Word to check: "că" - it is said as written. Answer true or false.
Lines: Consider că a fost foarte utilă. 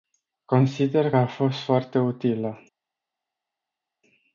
false